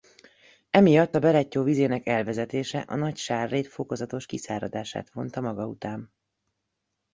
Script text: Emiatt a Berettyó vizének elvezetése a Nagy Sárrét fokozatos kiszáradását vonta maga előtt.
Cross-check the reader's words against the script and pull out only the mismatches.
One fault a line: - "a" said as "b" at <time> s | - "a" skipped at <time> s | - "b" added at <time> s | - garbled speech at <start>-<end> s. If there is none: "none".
- "előtt" said as "után" at 5.7 s